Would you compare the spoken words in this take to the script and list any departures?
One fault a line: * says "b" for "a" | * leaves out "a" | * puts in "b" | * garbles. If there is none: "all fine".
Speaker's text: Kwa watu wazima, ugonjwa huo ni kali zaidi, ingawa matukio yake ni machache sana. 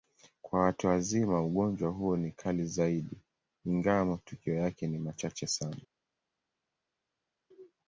all fine